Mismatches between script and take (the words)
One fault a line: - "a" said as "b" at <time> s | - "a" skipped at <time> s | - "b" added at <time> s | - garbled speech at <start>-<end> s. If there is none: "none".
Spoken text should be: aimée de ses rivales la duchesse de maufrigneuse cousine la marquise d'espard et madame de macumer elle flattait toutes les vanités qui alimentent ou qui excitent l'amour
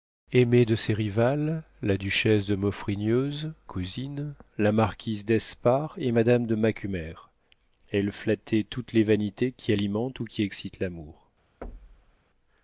none